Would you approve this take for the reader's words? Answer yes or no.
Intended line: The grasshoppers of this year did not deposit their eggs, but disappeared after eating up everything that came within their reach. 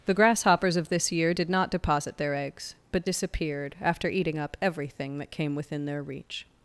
yes